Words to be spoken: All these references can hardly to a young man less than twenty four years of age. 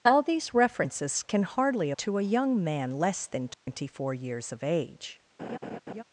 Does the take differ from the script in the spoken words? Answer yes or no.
no